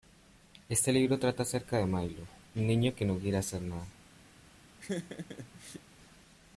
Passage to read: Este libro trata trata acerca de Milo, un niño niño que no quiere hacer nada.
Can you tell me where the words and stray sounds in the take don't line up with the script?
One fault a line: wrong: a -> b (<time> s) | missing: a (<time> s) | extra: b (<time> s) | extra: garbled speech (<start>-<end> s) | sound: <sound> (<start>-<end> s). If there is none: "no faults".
missing: trata (1.4 s)
missing: niño (3.0 s)
sound: laugh (4.8-5.8 s)